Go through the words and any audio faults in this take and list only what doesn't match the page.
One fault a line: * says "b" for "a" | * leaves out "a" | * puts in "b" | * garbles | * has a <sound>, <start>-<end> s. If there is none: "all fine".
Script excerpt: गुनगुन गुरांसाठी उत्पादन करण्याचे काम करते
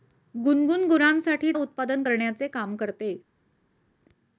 all fine